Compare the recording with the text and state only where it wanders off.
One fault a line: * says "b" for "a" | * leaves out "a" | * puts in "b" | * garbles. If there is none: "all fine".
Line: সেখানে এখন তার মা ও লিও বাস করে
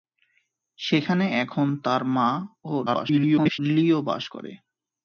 * garbles